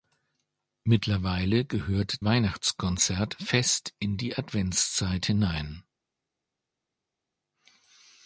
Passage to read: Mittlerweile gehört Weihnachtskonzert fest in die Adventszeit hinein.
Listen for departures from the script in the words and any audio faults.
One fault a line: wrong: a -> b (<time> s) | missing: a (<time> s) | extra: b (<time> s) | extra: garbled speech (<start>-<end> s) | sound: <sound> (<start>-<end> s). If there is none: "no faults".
no faults